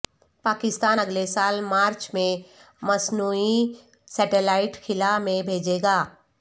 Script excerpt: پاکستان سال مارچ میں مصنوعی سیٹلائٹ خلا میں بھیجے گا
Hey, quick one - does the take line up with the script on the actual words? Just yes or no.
no